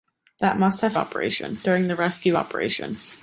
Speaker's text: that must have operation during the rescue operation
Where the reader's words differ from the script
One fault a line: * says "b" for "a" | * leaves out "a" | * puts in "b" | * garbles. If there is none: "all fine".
all fine